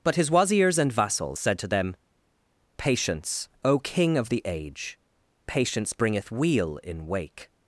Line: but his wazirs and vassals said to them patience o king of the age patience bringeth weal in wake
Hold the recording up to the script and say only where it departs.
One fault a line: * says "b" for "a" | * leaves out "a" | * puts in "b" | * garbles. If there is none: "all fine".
all fine